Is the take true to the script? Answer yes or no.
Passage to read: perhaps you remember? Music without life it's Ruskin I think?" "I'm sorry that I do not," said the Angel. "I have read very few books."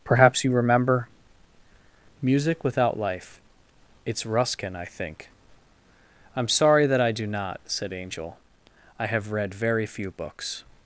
no